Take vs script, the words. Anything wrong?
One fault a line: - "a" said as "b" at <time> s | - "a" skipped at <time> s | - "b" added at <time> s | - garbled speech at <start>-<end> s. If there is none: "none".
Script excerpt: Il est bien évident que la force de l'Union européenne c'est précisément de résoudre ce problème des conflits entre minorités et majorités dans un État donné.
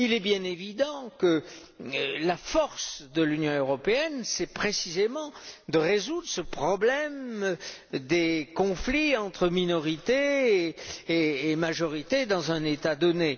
none